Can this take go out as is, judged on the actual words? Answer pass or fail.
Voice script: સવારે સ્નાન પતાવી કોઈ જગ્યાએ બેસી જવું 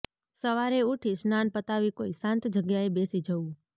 fail